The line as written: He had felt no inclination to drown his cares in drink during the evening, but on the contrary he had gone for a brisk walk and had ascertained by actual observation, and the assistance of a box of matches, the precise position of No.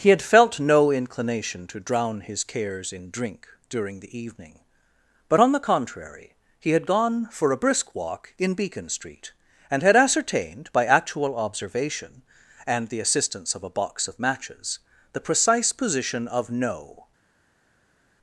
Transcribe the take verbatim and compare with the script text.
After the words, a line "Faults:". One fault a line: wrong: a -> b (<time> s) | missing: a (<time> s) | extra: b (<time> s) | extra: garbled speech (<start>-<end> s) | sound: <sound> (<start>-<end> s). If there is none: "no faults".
He had felt no inclination to drown his cares in drink during the evening, but on the contrary he had gone for a brisk walk in Beacon Street, and had ascertained by actual observation, and the assistance of a box of matches, the precise position of No.
Faults:
extra: in Beacon Street (8.4 s)